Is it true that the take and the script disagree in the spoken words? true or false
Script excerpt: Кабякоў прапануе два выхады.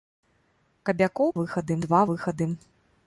true